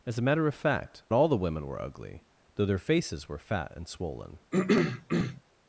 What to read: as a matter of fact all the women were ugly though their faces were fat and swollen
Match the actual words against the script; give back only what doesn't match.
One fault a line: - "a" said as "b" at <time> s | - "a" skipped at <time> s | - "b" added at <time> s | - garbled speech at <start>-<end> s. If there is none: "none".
none